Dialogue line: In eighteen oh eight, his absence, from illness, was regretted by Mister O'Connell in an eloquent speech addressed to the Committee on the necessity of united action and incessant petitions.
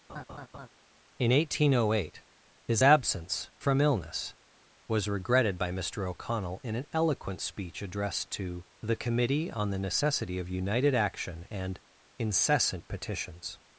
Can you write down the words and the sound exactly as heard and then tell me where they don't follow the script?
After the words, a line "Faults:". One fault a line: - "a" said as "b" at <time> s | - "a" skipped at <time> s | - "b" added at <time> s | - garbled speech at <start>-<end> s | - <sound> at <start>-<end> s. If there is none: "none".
In eighteen oh eight, his absence, from illness, was regretted by Mister O'Connell in an eloquent speech addressed to the Committee on the necessity of united action and incessant petitions.
Faults:
- laugh at 0.1-0.7 s